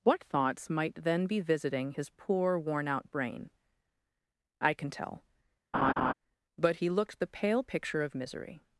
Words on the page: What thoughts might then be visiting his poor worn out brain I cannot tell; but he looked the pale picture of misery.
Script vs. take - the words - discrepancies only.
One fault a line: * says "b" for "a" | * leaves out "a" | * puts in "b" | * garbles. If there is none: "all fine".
* says "can" for "cannot"